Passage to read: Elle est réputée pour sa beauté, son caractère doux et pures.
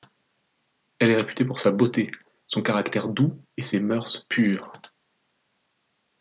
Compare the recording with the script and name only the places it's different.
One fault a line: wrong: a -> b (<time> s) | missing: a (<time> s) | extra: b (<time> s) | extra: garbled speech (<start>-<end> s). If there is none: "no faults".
extra: ses mœurs (3.6 s)